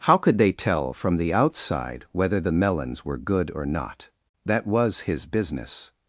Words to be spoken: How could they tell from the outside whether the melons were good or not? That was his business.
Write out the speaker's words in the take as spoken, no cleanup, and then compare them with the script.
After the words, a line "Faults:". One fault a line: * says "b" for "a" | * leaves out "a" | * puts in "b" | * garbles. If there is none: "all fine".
How could they tell from the outside whether the melons were good or not? That was his business.
Faults:
all fine